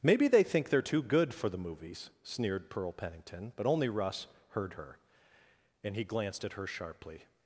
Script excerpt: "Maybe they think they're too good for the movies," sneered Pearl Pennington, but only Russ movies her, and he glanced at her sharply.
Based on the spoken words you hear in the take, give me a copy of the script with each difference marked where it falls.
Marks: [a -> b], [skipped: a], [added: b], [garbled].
"Maybe they think they're too good for the movies," sneered Pearl Pennington, but only Russ [movies -> heard] her, and he glanced at her sharply.